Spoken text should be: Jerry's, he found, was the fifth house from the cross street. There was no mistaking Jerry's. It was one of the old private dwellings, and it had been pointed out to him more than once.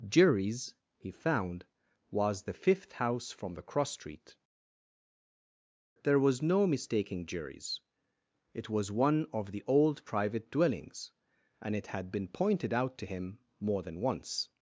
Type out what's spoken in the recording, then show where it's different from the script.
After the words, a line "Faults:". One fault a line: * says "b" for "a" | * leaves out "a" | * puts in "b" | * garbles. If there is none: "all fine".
Jerry's, he found, was the fifth house from the cross street. There was no mistaking Jerry's. It was one of the old private dwellings, and it had been pointed out to him more than once.
Faults:
all fine